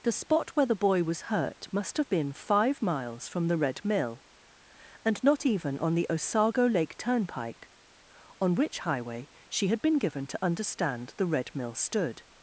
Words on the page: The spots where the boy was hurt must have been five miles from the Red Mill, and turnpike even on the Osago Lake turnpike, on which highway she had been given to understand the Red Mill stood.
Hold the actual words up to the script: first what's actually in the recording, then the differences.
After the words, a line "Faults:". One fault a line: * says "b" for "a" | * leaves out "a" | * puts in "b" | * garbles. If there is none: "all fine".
The spot where the boy was hurt must have been five miles from the Red Mill, and not even on the Osago Lake turnpike, on which highway she had been given to understand the Red Mill stood.
Faults:
* says "spot" for "spots"
* says "not" for "turnpike"